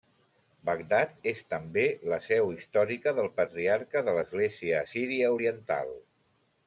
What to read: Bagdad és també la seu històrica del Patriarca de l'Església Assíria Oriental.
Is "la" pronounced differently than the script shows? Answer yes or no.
no